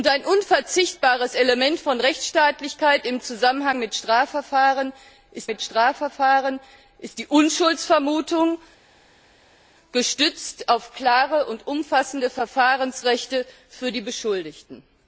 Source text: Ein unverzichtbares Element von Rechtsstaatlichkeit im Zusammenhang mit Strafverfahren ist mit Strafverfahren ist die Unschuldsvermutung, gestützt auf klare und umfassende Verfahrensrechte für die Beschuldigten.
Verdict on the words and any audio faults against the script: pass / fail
pass